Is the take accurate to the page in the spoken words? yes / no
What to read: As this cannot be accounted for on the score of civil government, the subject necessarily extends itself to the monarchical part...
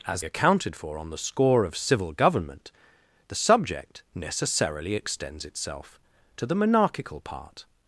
no